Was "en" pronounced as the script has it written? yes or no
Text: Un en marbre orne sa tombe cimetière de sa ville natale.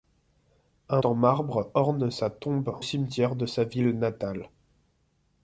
yes